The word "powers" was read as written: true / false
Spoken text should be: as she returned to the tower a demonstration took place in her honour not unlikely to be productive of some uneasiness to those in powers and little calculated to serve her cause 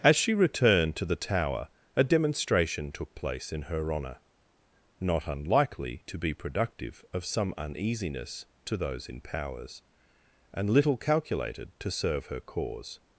true